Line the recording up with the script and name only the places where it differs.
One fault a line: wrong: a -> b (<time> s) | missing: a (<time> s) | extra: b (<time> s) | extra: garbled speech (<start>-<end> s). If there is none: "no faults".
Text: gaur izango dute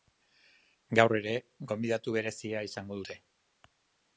extra: ere gonbidatu berezia (1.2 s)